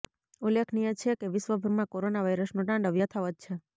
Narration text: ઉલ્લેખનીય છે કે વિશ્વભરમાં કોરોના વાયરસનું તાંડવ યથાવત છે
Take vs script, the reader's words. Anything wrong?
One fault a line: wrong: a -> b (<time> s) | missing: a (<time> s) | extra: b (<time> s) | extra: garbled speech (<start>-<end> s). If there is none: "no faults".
no faults